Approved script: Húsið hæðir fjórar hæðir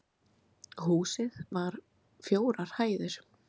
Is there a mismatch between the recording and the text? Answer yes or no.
yes